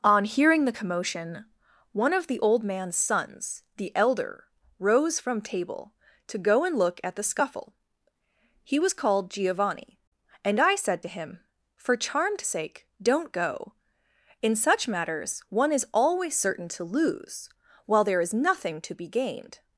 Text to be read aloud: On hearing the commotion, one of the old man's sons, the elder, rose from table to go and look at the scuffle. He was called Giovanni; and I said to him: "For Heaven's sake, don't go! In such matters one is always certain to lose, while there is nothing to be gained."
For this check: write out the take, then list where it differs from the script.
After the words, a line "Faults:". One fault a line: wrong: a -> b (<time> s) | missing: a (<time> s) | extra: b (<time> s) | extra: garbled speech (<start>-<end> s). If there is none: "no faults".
On hearing the commotion, one of the old man's sons, the elder, rose from table to go and look at the scuffle. He was called Giovanni; and I said to him: "For Charmed sake, don't go! In such matters one is always certain to lose, while there is nothing to be gained."
Faults:
wrong: Heaven's -> Charmed (12.0 s)